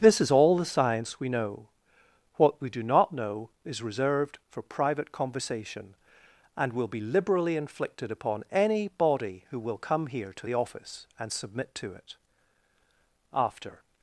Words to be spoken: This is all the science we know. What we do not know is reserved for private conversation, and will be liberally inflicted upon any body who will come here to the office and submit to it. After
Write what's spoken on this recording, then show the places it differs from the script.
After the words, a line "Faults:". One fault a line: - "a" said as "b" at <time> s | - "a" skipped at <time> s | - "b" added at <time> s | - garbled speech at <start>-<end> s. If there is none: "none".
This is all the science we know. What we do not know is reserved for private conversation, and will be liberally inflicted upon any body who will come here to the office and submit to it. After
Faults:
none